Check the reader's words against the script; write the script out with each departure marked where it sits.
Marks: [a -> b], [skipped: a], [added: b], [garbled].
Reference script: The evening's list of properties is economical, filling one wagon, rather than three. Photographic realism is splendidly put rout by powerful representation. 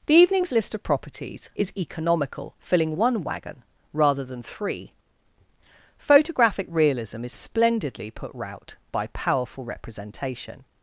The evening's list of properties is economical, filling one wagon, rather than three. Photographic realism is splendidly put rout by powerful representation.